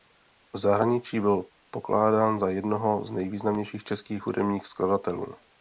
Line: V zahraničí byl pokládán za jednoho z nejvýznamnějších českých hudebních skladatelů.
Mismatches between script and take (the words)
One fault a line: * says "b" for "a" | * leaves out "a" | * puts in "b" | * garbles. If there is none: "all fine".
all fine